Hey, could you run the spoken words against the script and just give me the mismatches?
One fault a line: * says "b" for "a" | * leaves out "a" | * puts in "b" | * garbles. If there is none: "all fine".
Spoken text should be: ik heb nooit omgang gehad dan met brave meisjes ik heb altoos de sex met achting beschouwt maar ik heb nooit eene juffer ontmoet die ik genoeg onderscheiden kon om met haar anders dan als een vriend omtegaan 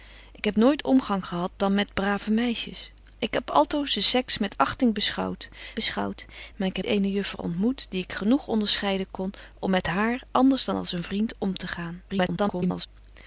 * puts in "beschouwt"
* leaves out "nooit"
* garbles